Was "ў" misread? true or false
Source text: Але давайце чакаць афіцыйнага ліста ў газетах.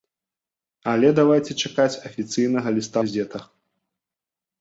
true